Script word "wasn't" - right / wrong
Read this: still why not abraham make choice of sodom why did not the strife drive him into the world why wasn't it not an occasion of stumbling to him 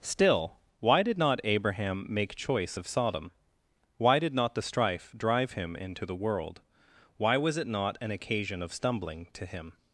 wrong